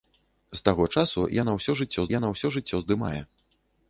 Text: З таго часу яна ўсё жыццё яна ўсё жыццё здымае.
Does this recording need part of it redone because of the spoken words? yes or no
no